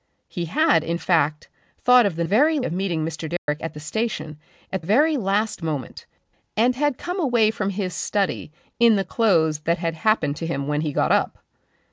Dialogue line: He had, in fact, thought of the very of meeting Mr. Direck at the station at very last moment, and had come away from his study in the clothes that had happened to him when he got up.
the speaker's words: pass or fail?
pass